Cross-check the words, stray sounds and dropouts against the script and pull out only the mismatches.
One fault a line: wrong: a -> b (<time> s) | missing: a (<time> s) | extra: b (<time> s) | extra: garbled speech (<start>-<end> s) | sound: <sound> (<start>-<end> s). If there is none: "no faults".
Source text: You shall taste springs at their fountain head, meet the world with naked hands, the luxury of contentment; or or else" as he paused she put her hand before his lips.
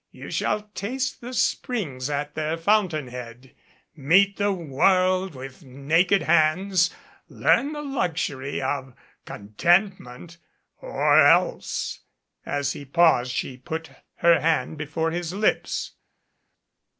extra: the (1.2 s)
extra: learn (7.3 s)
missing: or (11.2 s)